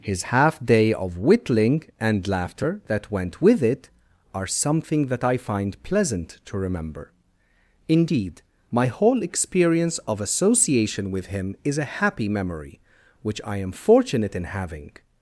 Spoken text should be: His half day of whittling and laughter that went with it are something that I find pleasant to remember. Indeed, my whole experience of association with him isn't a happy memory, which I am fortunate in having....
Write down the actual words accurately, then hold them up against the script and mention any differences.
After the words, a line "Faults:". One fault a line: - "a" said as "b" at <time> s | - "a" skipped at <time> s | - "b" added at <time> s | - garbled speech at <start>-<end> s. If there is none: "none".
His half day of whittling and laughter that went with it are something that I find pleasant to remember. Indeed, my whole experience of association with him is a happy memory, which I am fortunate in having....
Faults:
- "isn't" said as "is" at 11.6 s